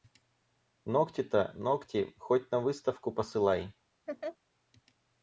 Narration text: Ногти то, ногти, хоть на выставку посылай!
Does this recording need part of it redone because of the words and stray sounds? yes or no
yes